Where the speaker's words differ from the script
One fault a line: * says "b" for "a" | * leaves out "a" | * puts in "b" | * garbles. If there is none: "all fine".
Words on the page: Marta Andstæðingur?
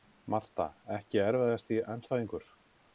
* puts in "Ekki erfiðasti"